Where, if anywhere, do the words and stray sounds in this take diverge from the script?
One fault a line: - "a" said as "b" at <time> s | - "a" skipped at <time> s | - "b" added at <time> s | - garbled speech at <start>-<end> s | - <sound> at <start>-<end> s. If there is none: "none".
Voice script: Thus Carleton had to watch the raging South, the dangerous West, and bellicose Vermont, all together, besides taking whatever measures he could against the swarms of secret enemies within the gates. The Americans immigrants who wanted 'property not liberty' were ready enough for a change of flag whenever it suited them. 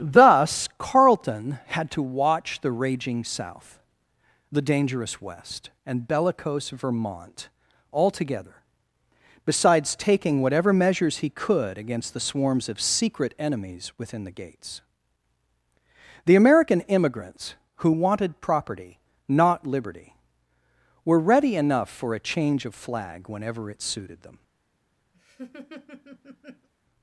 - "Americans" said as "American" at 16.4 s
- laugh at 25.1-26.7 s